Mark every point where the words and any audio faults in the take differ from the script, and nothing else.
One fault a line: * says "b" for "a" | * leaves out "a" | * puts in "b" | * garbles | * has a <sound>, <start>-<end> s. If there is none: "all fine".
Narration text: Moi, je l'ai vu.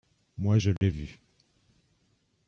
* has a dropout, 0.8-0.8 s